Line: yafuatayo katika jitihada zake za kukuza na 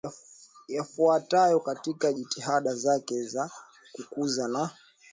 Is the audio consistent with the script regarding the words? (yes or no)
yes